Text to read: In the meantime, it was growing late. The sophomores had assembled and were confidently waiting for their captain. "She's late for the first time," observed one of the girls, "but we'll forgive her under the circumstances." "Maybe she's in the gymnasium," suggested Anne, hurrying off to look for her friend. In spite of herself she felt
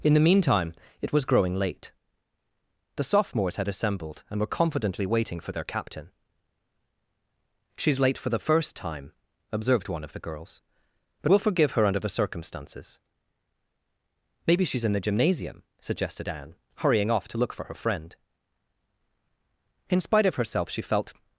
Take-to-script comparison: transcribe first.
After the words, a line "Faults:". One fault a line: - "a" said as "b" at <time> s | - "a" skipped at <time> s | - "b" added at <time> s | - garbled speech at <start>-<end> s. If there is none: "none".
In the meantime, it was growing late. The sophomores had assembled and were confidently waiting for their captain. "She's late for the first time," observed one of the girls, "but we'll forgive her under the circumstances." "Maybe she's in the gymnasium," suggested Anne, hurrying off to look for her friend. In spite of herself she felt
Faults:
none